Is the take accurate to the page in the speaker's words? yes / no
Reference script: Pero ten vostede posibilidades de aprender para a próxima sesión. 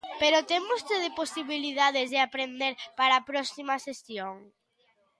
yes